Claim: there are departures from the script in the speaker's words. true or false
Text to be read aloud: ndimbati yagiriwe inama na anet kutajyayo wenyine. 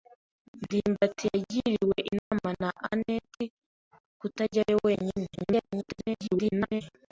true